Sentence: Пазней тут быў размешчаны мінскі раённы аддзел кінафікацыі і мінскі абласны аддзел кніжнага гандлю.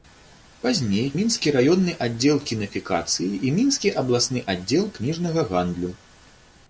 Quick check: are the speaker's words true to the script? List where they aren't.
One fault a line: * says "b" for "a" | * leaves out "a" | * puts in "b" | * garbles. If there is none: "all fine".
* leaves out "тут быў размешчаны"